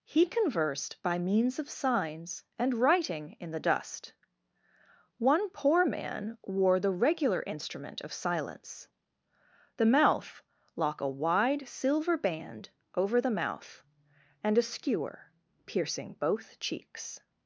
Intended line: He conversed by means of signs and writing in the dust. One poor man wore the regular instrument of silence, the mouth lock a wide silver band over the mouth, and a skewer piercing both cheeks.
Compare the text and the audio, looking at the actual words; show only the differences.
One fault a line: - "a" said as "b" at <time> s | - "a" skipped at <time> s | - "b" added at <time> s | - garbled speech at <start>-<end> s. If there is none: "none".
none